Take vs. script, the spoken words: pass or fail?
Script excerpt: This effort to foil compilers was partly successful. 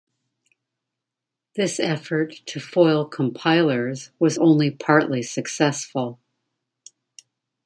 fail